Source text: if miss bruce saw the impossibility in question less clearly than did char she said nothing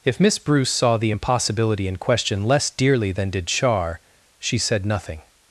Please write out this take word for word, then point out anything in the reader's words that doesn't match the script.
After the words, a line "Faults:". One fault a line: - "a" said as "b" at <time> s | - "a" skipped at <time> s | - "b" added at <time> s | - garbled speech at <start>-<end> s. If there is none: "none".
if miss bruce saw the impossibility in question less dearly than did char she said nothing
Faults:
- "clearly" said as "dearly" at 2.7 s